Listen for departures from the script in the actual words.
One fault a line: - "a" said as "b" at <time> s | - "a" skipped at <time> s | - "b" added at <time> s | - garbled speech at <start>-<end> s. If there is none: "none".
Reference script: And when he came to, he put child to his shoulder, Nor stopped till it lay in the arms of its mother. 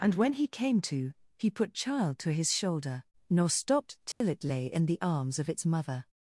none